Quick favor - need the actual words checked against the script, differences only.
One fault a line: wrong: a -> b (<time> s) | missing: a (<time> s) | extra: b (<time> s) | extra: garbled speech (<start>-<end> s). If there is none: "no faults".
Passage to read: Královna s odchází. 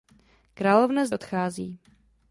no faults